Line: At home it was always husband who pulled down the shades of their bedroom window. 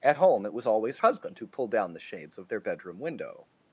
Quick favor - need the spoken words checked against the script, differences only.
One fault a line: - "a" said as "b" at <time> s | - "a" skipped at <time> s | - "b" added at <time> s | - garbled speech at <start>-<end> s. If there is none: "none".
none